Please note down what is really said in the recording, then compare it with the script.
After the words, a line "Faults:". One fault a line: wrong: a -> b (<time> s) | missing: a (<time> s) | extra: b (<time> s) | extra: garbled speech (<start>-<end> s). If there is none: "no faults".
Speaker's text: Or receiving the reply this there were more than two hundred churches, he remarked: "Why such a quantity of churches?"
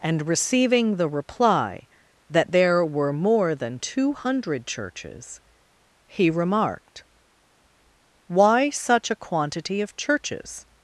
And receiving the reply that there were more than two hundred churches, he remarked: "Why such a quantity of churches?"
Faults:
wrong: Or -> And (0.0 s)
wrong: this -> that (2.3 s)